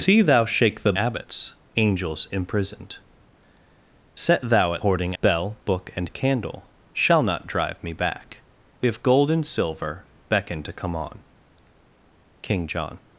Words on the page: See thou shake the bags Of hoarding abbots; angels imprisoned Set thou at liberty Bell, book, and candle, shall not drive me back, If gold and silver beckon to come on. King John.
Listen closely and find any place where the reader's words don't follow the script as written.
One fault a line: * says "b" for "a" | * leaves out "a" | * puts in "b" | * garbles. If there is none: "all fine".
* leaves out "bags Of hoarding"
* says "hoarding" for "liberty"